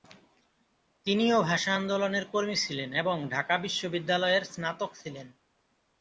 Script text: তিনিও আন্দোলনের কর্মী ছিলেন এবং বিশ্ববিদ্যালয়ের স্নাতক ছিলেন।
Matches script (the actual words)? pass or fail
fail